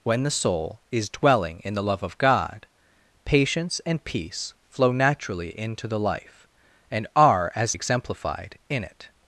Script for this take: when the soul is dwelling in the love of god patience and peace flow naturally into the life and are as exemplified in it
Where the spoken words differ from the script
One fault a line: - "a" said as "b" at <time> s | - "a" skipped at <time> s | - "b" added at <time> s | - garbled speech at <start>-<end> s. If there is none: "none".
none